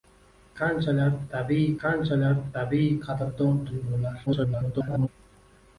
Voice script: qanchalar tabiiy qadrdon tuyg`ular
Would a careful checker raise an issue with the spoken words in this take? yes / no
yes